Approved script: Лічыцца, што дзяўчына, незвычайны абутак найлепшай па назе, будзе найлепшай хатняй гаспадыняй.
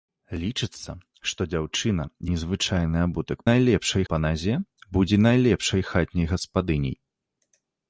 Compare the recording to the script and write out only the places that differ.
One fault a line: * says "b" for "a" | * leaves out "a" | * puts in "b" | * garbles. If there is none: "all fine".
all fine